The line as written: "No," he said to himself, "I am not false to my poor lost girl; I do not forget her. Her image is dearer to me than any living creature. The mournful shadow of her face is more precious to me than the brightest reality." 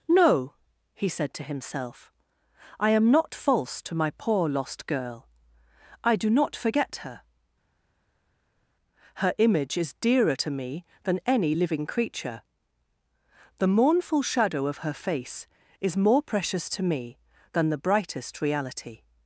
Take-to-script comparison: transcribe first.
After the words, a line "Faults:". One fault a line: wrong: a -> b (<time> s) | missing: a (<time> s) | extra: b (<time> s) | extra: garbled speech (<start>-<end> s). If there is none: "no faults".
"No," he said to himself, "I am not false to my poor lost girl; I do not forget her. Her image is dearer to me than any living creature. The mournful shadow of her face is more precious to me than the brightest reality."
Faults:
no faults